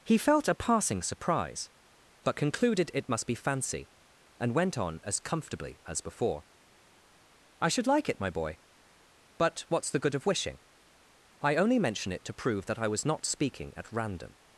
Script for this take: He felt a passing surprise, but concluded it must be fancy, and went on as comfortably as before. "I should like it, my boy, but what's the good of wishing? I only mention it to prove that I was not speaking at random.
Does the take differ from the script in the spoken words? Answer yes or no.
no